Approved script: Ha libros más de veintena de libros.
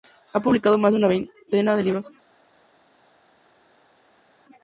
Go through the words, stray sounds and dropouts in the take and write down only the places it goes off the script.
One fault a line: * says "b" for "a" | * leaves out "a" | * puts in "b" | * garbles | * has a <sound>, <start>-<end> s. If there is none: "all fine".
* says "publicado" for "libros"
* puts in "una"